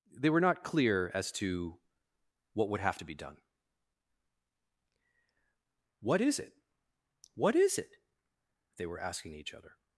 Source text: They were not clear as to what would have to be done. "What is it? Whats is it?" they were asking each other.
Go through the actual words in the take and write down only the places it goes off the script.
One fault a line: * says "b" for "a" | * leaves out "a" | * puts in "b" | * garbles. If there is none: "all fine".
* says "What" for "Whats"